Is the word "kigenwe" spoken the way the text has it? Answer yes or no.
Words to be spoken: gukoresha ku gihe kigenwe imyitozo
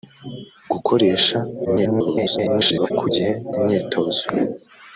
no